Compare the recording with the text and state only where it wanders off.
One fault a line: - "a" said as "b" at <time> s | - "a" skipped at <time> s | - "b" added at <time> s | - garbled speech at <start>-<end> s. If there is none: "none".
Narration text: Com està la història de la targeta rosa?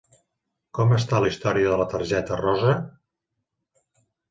none